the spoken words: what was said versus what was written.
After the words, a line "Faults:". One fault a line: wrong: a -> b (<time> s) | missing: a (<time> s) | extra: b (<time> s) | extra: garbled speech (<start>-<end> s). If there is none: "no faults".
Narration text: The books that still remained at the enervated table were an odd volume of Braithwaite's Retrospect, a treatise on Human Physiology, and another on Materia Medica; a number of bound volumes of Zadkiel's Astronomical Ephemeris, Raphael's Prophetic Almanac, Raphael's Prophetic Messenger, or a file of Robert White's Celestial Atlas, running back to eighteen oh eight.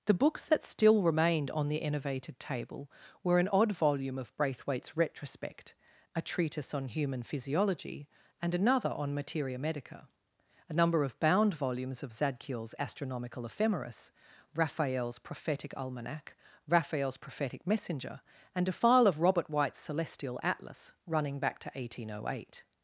The books that still remained on the enervated table were an odd volume of Braithwaite's Retrospect, a treatise on Human Physiology, and another on Materia Medica; a number of bound volumes of Zadkiel's Astronomical Ephemeris, Raphael's Prophetic Almanac, Raphael's Prophetic Messenger, and a file of Robert White's Celestial Atlas, running back to eighteen oh eight.
Faults:
wrong: at -> on (1.5 s)
wrong: or -> and (18.5 s)